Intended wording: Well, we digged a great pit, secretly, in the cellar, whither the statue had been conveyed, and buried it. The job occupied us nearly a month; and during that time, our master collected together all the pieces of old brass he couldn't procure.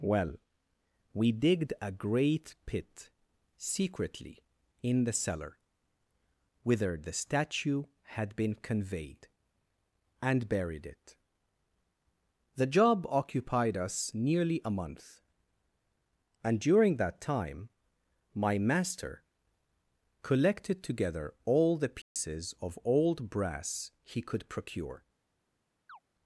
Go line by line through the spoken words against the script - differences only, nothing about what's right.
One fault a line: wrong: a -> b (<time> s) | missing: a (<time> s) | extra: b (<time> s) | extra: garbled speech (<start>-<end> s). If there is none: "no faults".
wrong: our -> my (18.3 s)
wrong: couldn't -> could (24.2 s)